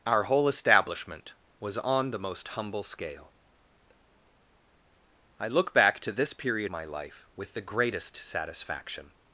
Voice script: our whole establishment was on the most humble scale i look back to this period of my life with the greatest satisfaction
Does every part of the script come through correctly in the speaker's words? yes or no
no